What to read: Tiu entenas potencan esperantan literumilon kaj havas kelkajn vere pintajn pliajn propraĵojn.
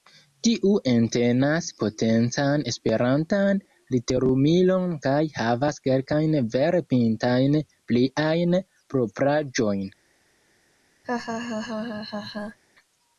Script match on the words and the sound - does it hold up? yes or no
no